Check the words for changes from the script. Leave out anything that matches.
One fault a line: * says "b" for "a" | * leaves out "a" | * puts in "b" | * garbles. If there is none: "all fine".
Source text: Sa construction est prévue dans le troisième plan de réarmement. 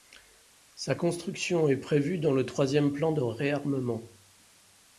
all fine